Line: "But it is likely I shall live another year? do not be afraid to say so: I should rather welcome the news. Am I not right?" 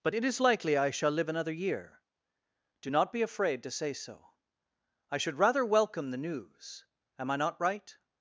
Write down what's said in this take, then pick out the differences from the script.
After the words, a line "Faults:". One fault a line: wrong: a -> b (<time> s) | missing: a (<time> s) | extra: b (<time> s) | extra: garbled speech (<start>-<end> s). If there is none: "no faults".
"But it is likely I shall live another year? do not be afraid to say so: I should rather welcome the news. Am I not right?"
Faults:
no faults